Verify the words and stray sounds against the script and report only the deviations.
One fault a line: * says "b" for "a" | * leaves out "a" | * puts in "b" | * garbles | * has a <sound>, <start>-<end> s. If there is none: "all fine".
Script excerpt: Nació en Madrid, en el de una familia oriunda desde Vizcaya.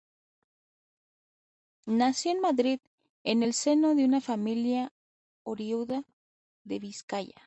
* puts in "seno"
* says "de" for "desde"